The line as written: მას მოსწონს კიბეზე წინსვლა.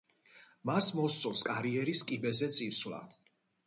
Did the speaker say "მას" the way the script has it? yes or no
yes